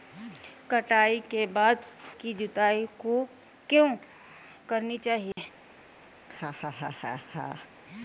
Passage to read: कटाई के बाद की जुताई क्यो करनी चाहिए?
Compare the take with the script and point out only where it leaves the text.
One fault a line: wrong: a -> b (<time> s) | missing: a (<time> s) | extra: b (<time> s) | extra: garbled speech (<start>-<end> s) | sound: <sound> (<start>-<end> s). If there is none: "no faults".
sound: dropout (5.3-5.4 s)
sound: laugh (6.2-7.7 s)